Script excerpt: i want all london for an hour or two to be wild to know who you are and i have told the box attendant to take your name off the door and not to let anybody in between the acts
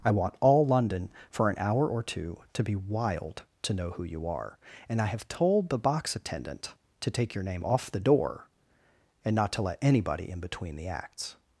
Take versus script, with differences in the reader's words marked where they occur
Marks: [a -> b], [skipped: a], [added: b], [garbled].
i want all london for an hour or two to be wild to know who you are and i have told the box attendant to take your name off the door and not to let anybody in between the acts